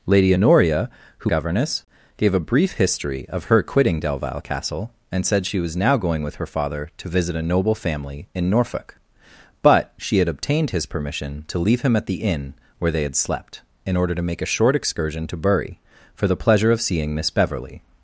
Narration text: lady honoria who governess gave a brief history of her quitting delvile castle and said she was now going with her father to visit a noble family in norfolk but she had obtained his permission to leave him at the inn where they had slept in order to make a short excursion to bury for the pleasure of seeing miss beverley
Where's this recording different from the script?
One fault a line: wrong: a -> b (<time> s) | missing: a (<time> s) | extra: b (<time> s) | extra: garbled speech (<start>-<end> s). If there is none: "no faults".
no faults